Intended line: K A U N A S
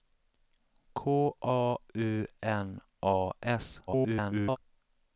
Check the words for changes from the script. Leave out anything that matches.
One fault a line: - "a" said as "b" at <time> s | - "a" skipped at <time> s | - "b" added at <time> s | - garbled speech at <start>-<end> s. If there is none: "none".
- garbled speech at 3.9-4.6 s